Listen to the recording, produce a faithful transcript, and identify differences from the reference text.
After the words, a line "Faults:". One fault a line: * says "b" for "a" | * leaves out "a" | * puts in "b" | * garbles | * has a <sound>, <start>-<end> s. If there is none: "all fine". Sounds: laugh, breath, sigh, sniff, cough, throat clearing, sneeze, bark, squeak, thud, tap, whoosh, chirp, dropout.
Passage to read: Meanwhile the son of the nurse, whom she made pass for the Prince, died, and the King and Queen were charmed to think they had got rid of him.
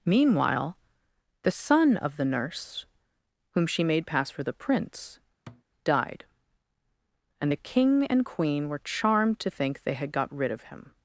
Meanwhile the son of the nurse, whom she made pass for the Prince, died, and the King and Queen were charmed to think they had got rid of him.
Faults:
* has a thud, 5.5-5.6 s